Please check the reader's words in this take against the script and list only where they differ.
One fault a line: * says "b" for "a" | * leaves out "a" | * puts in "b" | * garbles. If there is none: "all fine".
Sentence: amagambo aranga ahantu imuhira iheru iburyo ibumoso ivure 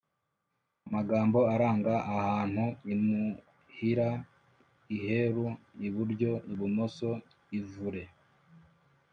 all fine